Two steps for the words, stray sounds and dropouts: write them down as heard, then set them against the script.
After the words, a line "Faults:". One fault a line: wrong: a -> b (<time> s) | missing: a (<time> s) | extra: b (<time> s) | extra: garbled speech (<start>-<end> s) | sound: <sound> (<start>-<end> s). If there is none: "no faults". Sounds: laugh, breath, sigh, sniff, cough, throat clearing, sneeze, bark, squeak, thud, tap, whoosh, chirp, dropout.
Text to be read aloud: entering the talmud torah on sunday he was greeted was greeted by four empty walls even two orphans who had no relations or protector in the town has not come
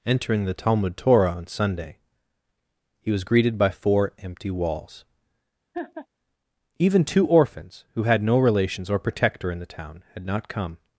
entering the talmud torah on sunday he was greeted by four empty walls even two orphans who had no relations or protector in the town had not come
Faults:
missing: was greeted (3.6 s)
sound: laugh (5.7-6.1 s)
wrong: has -> had (10.1 s)